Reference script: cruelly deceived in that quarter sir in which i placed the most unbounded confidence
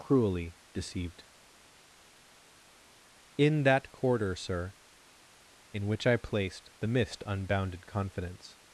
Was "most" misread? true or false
true